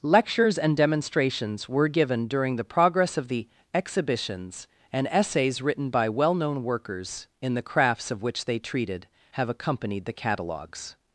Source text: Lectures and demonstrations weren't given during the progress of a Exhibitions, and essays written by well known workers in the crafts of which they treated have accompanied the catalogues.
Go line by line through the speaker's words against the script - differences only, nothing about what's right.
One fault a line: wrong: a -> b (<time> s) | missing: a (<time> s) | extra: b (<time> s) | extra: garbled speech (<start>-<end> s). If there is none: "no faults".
wrong: weren't -> were (1.7 s)
wrong: a -> the (3.3 s)